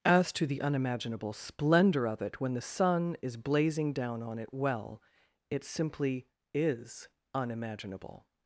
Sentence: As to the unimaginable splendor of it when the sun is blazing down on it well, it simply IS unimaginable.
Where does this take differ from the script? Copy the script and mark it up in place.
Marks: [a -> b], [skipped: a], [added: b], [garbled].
As to the unimaginable splendor of it when the sun is blazing down on it well, it simply IS unimaginable.